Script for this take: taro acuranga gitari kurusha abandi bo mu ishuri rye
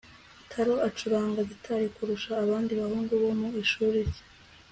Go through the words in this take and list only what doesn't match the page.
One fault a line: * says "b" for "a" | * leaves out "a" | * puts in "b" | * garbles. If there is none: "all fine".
* puts in "bahungu"